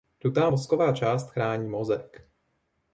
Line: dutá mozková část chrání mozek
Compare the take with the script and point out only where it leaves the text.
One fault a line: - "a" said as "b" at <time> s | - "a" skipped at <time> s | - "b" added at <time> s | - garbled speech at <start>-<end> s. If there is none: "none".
none